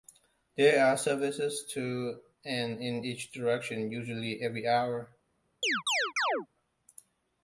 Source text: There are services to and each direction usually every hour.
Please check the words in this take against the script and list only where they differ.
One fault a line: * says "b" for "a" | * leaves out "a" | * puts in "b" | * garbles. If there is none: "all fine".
* puts in "in"